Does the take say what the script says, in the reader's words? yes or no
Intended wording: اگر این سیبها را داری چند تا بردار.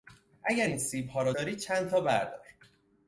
yes